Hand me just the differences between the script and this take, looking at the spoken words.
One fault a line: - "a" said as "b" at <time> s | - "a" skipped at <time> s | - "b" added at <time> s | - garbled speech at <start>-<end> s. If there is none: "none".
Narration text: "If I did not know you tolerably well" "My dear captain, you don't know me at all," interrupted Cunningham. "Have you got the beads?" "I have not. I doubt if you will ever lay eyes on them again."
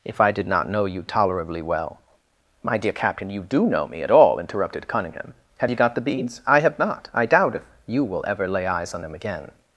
- "don't" said as "do" at 3.4 s